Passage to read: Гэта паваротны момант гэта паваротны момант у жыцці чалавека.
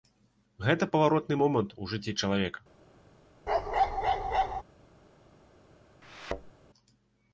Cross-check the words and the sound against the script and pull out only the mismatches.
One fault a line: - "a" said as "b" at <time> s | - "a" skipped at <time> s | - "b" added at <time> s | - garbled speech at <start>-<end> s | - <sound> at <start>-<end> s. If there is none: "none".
- "гэта паваротны момант" skipped at 1.8 s
- bark at 3.5-4.6 s
- thud at 6.0-6.5 s